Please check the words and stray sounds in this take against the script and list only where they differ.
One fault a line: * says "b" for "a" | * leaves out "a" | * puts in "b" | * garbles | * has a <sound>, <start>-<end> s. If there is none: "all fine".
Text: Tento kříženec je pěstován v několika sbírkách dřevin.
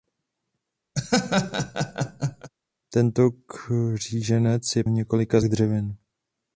* has a laugh, 0.9-2.5 s
* leaves out "pěstován"
* leaves out "sbírkách"